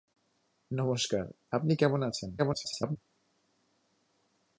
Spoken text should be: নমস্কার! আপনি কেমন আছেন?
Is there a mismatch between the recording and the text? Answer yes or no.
yes